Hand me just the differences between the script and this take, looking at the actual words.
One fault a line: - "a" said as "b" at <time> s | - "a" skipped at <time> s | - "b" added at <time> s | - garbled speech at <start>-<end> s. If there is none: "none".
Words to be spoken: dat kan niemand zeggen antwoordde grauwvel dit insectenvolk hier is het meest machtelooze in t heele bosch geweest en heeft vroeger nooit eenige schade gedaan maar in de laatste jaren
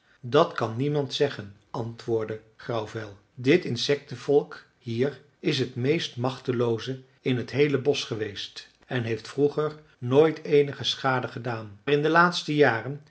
- "maar" skipped at 11.8 s